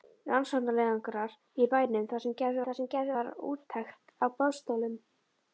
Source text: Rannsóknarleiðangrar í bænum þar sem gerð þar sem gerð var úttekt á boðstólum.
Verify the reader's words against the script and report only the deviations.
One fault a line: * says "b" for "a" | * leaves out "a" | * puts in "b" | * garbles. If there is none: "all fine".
all fine